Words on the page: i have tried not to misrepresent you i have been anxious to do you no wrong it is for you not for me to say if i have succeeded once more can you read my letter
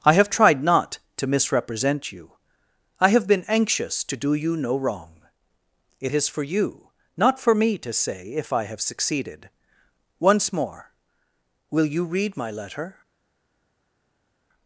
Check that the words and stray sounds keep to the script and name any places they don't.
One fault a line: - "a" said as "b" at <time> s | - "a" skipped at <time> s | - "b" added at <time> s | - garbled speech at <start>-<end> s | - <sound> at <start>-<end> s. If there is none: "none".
- "can" said as "will" at 11.7 s